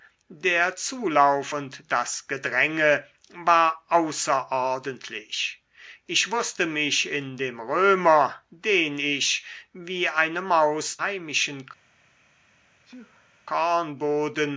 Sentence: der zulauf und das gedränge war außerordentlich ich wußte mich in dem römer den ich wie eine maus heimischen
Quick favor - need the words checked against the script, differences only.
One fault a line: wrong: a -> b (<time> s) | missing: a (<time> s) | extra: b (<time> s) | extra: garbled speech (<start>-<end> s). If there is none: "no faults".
no faults